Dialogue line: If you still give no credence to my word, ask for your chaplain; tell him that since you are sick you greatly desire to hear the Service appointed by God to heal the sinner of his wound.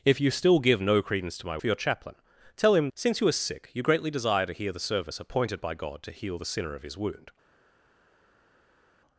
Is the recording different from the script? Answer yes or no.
yes